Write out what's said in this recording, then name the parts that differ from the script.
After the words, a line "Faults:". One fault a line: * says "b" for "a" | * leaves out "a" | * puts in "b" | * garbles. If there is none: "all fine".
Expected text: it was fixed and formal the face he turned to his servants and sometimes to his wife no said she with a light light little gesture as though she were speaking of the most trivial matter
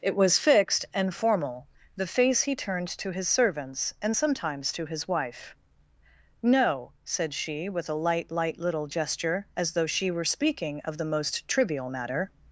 it was fixed and formal the face he turned to his servants and sometimes to his wife no said she with a light light little gesture as though she were speaking of the most trivial matter
Faults:
all fine